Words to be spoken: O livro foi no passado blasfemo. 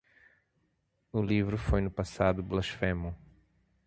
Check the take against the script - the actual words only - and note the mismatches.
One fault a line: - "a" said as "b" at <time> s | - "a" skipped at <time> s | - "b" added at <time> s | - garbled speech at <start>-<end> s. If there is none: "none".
none